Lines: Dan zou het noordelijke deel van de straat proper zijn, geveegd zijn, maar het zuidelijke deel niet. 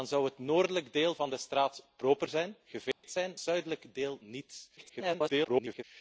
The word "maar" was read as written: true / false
false